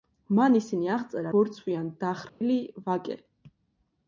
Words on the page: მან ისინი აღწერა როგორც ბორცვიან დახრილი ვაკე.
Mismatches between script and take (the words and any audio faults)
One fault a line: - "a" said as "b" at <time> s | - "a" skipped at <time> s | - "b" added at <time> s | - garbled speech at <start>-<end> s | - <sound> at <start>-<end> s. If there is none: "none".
- "როგორც" skipped at 1.3 s
- dropout at 2.3-2.4 s